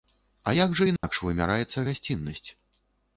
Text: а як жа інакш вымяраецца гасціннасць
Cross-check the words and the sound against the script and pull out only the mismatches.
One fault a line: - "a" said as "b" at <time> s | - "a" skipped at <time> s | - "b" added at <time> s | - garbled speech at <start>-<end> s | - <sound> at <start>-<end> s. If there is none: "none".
- dropout at 1.0-1.0 s